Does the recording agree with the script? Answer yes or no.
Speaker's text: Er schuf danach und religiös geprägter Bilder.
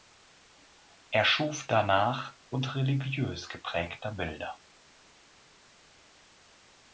yes